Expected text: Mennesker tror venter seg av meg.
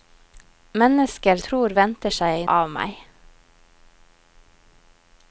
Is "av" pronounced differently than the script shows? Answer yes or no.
no